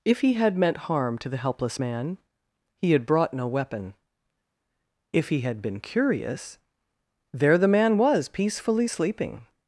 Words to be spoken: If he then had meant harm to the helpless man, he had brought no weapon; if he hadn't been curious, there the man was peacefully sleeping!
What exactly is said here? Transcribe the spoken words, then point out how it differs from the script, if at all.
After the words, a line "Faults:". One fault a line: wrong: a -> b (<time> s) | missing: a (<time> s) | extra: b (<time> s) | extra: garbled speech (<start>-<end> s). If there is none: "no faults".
If he had meant harm to the helpless man, he had brought no weapon; if he had been curious, there the man was peacefully sleeping!
Faults:
missing: then (0.3 s)
wrong: hadn't -> had (5.4 s)